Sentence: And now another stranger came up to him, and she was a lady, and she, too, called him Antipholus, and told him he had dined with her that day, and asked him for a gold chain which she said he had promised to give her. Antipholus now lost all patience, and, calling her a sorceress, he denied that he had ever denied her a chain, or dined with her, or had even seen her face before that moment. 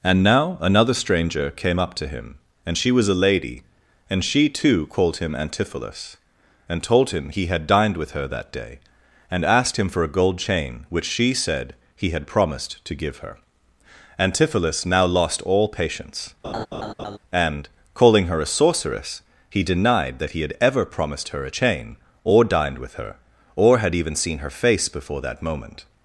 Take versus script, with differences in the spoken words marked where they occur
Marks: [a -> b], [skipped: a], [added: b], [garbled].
And now another stranger came up to him, and she was a lady, and she, too, called him Antipholus, and told him he had dined with her that day, and asked him for a gold chain which she said he had promised to give her. Antipholus now lost all patience, and, calling her a sorceress, he denied that he had ever [denied -> promised] her a chain, or dined with her, or had even seen her face before that moment.